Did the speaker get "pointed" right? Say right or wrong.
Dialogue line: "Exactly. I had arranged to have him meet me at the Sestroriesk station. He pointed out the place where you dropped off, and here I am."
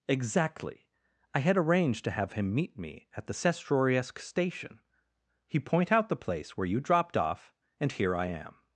wrong